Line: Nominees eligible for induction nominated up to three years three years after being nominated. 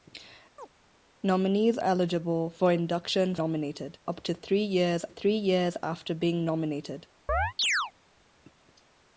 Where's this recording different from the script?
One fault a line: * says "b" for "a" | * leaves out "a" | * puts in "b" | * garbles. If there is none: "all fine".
all fine